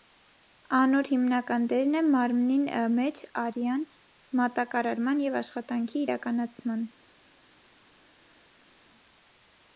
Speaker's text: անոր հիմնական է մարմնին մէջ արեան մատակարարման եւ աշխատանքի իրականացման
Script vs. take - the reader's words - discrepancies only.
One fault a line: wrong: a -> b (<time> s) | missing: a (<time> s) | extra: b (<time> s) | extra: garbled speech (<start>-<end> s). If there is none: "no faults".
extra: դերն (1.7 s)